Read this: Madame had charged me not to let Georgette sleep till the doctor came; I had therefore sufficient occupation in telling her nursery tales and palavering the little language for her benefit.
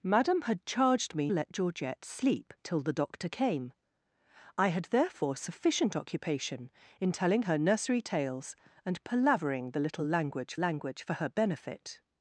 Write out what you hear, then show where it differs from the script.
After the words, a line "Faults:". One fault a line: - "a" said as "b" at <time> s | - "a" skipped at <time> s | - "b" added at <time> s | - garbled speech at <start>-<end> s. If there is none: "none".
Madame had charged me let Georgette sleep till the doctor came; I had therefore sufficient occupation in telling her nursery tales and palavering the little language language for her benefit.
Faults:
- "not to" skipped at 1.3 s
- "language" added at 10.5 s